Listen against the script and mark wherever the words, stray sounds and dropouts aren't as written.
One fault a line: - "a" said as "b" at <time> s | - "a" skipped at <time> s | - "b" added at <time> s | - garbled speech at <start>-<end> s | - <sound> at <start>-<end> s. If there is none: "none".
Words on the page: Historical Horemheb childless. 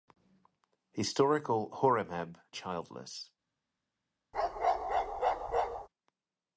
- bark at 4.3-5.9 s